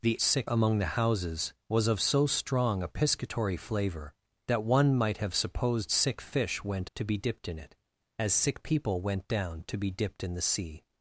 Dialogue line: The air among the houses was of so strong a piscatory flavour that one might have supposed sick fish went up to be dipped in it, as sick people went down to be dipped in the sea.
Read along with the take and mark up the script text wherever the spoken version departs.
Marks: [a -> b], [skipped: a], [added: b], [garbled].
The [air -> sick] among the houses was of so strong a piscatory flavour that one might have supposed sick fish went [skipped: up] to be dipped in it, as sick people went down to be dipped in the sea.